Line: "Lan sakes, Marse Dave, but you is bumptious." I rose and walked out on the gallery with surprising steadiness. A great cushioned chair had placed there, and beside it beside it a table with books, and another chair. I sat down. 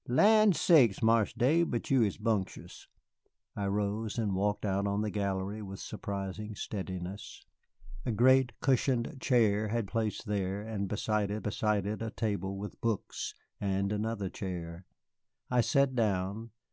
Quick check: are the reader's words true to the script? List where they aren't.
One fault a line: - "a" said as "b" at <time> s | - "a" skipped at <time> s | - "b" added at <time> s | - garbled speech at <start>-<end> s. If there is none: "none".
none